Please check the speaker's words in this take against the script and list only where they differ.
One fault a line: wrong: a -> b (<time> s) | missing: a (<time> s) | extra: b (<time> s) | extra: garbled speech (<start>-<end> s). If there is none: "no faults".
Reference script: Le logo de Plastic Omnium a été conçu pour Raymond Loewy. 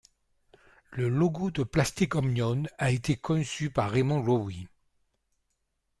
wrong: pour -> par (3.7 s)